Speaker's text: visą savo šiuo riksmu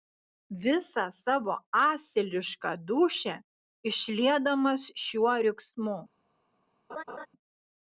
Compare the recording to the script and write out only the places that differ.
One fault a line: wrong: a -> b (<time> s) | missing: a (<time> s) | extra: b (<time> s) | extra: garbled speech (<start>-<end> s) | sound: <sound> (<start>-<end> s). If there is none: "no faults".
extra: asilišką dūšią išliedamas (1.8 s)
sound: laugh (6.9-7.3 s)